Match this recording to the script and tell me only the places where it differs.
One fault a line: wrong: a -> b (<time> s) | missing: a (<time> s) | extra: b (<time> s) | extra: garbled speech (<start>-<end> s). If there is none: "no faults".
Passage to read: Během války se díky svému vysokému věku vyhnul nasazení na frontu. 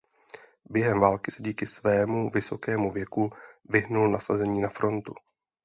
no faults